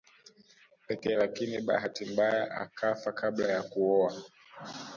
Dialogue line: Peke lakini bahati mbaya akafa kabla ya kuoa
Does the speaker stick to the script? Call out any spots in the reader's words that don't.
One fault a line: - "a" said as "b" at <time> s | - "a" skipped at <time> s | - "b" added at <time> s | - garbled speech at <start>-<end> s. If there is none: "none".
none